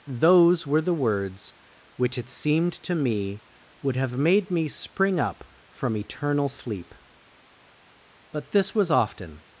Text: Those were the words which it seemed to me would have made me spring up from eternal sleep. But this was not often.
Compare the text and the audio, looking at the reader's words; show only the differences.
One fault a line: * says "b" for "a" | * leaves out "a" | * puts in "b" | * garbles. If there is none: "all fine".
* leaves out "not"